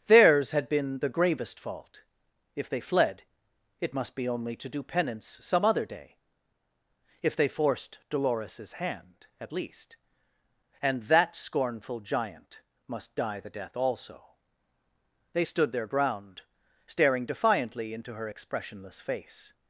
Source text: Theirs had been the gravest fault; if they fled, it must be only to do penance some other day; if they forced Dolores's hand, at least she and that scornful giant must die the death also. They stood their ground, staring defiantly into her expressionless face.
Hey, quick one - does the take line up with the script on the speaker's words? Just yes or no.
no